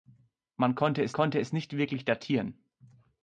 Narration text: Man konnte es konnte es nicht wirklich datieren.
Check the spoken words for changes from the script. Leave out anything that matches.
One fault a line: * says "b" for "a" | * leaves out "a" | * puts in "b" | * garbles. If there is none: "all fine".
all fine